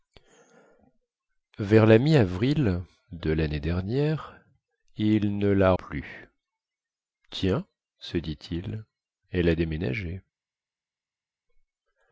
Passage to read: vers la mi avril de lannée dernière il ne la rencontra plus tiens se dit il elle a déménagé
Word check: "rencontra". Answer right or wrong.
wrong